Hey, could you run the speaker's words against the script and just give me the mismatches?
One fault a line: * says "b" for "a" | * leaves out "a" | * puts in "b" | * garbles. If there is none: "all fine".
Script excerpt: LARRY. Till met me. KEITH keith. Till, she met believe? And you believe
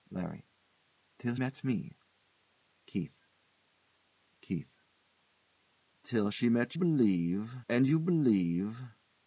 all fine